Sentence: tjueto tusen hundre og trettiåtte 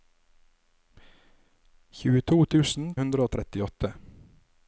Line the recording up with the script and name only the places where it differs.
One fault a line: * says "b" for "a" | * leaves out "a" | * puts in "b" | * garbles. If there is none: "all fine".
all fine